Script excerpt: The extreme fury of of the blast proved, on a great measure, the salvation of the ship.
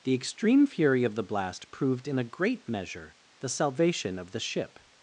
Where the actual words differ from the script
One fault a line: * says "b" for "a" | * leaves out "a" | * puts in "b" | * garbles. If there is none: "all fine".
* leaves out "of"
* says "in" for "on"